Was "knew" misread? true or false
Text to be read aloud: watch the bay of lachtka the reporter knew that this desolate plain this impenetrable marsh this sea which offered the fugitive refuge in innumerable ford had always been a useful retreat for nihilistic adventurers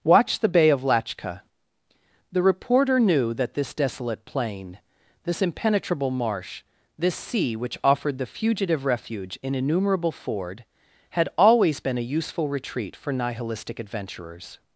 false